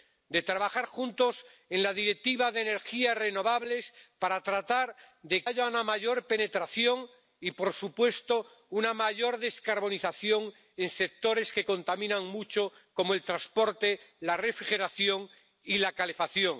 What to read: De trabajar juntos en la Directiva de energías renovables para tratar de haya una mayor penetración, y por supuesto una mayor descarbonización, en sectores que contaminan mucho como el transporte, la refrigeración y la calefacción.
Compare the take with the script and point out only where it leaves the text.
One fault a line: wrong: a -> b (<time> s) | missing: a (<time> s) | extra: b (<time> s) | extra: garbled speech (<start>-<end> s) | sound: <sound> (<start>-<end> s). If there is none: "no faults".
no faults